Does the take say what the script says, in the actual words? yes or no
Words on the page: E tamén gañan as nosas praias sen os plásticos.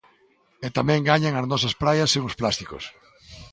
yes